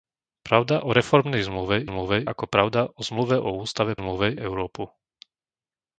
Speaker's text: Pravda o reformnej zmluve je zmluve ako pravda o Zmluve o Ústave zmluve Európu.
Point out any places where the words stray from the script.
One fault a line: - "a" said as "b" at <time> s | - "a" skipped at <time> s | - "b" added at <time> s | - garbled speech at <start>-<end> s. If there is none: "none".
none